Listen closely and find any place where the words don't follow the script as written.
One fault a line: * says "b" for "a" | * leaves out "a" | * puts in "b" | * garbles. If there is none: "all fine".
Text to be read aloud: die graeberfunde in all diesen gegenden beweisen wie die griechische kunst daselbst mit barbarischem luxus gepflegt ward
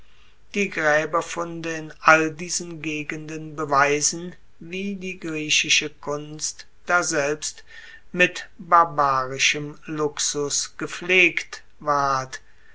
all fine